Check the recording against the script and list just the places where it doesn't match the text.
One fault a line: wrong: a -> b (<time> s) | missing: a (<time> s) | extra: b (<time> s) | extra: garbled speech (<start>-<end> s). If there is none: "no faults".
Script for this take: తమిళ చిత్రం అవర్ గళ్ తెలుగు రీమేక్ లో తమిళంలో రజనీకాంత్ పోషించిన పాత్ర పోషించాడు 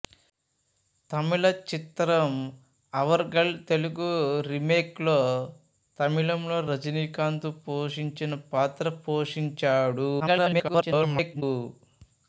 extra: garbled speech (10.2-11.4 s)